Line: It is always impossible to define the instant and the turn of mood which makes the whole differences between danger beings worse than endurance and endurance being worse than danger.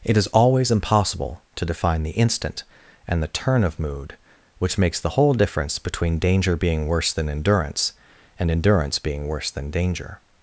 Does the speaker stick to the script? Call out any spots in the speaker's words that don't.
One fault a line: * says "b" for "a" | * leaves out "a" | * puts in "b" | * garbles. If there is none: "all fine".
* says "difference" for "differences"
* says "being" for "beings"